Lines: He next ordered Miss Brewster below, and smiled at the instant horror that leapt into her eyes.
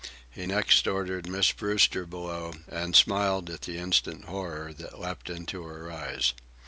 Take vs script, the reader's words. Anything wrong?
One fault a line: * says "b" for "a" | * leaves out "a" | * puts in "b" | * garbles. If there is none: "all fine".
all fine